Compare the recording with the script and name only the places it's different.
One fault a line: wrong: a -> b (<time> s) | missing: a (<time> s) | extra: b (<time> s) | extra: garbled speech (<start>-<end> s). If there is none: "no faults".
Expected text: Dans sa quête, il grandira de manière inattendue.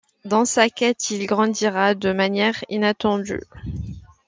no faults